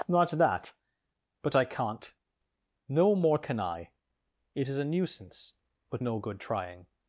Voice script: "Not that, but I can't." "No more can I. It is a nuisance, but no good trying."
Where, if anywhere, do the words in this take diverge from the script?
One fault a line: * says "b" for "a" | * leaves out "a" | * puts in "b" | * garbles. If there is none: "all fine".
all fine